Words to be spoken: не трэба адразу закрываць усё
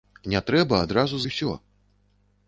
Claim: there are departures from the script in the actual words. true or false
true